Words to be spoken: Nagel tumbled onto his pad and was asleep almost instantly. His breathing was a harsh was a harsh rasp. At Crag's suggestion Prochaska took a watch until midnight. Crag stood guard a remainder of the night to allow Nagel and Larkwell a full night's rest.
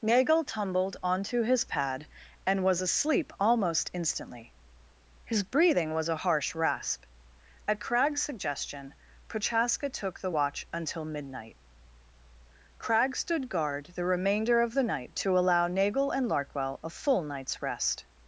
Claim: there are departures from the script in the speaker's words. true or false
true